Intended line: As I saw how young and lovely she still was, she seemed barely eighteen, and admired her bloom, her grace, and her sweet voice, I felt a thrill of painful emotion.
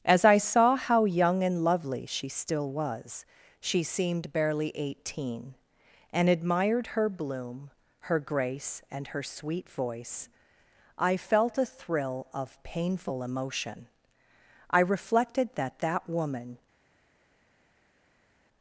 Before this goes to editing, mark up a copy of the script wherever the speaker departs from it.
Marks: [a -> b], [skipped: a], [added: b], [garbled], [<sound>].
As I saw how young and lovely she still was, she seemed barely eighteen, and admired her bloom, her grace, and her sweet voice, I felt a thrill of painful emotion. [added: I reflected that that woman]